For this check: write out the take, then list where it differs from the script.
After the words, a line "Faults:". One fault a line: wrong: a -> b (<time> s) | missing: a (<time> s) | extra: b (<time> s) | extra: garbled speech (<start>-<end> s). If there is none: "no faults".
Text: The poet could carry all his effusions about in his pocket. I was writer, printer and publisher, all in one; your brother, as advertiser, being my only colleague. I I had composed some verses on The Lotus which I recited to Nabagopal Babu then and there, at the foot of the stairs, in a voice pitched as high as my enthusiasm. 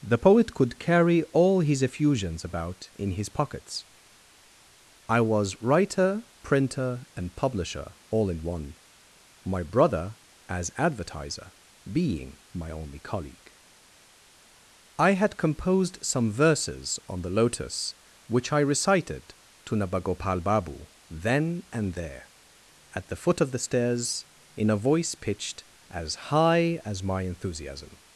The poet could carry all his effusions about in his pockets. I was writer, printer and publisher, all in one; my brother, as advertiser, being my only colleague. I had composed some verses on The Lotus which I recited to Nabagopal Babu then and there, at the foot of the stairs, in a voice pitched as high as my enthusiasm.
Faults:
wrong: pocket -> pockets (3.3 s)
wrong: your -> my (9.4 s)
missing: I (15.1 s)